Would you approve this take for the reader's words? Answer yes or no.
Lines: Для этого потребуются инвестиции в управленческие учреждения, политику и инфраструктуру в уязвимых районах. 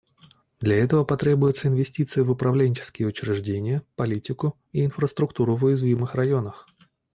yes